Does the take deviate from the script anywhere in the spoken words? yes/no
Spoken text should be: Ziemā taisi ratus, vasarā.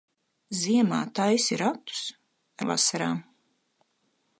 no